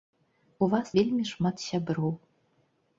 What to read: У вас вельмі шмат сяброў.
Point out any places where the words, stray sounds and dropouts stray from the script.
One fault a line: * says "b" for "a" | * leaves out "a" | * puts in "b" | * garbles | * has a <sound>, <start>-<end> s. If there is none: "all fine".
all fine